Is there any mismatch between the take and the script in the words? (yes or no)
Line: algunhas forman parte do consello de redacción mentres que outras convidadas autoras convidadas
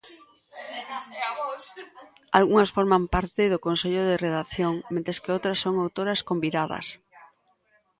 yes